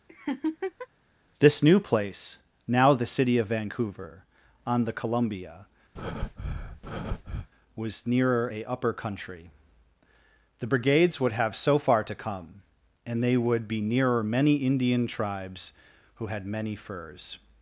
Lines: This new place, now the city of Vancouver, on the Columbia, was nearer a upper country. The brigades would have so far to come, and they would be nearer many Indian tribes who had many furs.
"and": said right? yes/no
yes